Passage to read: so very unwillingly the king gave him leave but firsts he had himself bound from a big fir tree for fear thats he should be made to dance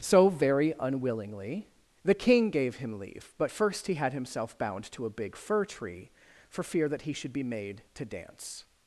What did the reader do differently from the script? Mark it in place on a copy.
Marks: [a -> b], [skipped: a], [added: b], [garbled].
so very unwillingly the king gave him leave but [firsts -> first] he had himself bound [from -> to] a big fir tree for fear [thats -> that] he should be made to dance